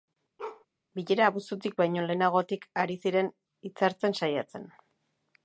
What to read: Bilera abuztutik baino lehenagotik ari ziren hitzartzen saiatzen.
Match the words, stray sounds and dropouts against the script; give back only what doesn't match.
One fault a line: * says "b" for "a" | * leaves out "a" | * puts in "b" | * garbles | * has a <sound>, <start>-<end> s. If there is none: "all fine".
* has a bark, 0.4-0.7 s